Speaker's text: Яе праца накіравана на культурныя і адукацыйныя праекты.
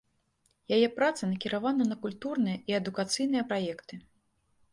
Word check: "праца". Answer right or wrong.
right